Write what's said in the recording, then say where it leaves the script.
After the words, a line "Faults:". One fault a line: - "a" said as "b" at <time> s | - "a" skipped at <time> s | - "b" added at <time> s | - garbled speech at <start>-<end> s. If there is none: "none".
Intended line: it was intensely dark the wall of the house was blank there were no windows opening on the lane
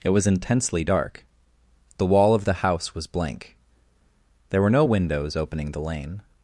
it was intensely dark the wall of the house was blank there were no windows opening the lane
Faults:
- "on" skipped at 5.7 s